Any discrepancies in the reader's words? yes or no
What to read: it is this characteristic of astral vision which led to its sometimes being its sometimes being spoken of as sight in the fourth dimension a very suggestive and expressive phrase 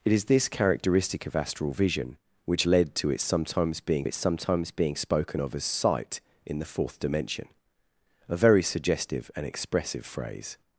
no